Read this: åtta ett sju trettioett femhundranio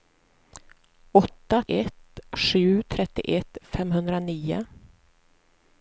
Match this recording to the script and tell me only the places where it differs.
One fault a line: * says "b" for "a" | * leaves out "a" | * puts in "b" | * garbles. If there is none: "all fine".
all fine